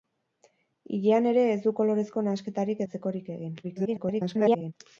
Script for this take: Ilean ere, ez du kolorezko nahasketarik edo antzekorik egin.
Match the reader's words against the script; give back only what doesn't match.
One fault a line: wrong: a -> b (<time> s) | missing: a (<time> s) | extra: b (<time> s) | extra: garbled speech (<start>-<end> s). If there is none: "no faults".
missing: edo (2.8 s)
extra: garbled speech (3.6-4.7 s)